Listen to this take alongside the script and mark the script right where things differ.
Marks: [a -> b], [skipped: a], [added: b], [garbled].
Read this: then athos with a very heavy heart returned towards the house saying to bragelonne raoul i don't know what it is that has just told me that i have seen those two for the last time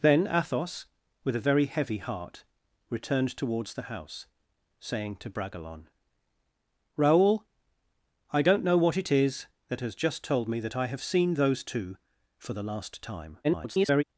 then athos with a very heavy heart returned towards the house saying to bragelonne raoul i don't know what it is that has just told me that i have seen those two for the last time [garbled]